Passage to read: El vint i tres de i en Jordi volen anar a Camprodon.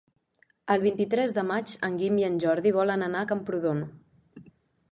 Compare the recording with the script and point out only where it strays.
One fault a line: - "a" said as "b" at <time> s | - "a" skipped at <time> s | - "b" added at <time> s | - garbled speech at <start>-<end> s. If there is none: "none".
- "maig en Guim" added at 1.5 s